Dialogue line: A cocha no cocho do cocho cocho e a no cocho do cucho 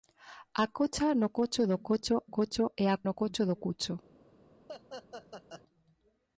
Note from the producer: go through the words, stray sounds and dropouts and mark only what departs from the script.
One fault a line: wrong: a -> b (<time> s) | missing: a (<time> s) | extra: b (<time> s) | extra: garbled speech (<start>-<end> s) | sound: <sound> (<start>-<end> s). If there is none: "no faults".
sound: laugh (4.7-5.6 s)